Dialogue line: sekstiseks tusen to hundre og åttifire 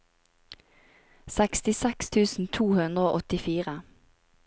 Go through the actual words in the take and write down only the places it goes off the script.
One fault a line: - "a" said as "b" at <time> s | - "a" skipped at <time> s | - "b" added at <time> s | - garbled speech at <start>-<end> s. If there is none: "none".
none